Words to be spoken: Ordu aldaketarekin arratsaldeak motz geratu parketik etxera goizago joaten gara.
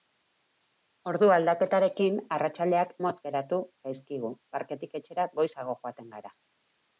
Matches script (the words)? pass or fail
fail